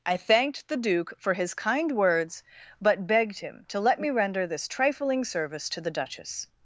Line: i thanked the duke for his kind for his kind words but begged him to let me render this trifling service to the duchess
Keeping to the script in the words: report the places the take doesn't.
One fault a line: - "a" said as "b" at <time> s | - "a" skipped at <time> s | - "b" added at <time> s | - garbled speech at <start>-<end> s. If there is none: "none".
- "for his kind" skipped at 1.9 s